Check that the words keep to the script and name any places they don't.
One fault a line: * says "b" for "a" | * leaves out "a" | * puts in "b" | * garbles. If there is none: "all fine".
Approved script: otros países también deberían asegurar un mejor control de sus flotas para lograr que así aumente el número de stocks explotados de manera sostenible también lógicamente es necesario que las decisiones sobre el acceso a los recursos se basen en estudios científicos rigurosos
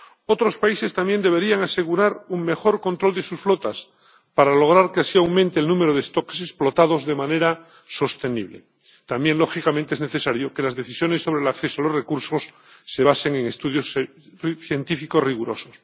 all fine